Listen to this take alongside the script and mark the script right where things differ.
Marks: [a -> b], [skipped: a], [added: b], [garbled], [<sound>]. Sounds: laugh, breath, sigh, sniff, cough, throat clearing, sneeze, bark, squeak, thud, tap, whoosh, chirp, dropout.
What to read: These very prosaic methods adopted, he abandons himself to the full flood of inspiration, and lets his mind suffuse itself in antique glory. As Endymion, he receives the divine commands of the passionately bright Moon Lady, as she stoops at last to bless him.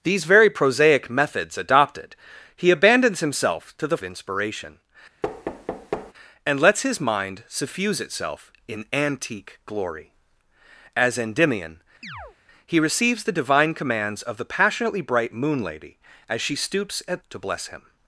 These very prosaic methods adopted, he abandons himself to the [skipped: full flood of] inspiration, [thud] and lets his mind suffuse itself in antique glory. As Endymion, [chirp] he receives the divine commands of the passionately bright Moon Lady, as she stoops at [skipped: last] to bless him.